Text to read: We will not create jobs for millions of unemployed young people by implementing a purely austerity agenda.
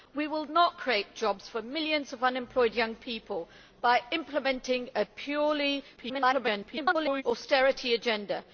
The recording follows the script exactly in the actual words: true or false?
false